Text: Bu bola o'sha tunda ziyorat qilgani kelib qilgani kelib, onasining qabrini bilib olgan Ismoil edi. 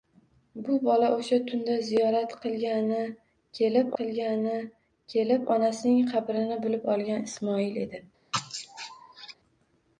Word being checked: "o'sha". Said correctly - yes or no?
yes